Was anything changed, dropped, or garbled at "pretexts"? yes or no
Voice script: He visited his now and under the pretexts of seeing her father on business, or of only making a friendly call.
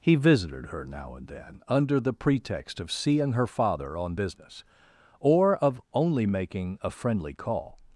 yes